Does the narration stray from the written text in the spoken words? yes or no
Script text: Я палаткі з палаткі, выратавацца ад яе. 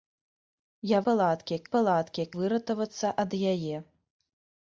no